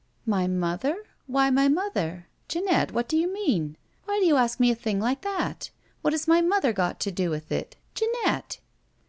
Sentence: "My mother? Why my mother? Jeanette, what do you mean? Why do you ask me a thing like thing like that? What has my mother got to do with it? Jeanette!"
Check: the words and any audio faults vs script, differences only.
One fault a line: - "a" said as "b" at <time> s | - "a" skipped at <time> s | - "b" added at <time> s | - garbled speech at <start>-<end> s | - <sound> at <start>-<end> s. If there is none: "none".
- "thing like" skipped at 5.2 s